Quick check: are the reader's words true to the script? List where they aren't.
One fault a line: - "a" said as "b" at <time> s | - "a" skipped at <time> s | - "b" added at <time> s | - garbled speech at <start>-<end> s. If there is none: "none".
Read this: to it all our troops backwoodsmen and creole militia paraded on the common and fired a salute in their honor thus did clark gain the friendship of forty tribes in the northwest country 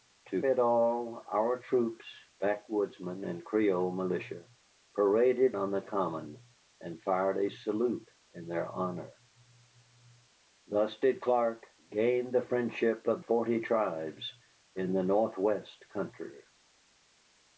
none